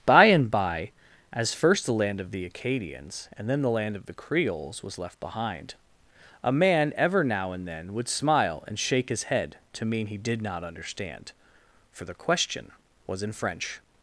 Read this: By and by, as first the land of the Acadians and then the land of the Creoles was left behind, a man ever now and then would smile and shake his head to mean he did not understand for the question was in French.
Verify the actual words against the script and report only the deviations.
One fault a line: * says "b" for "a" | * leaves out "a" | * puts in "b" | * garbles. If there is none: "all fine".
all fine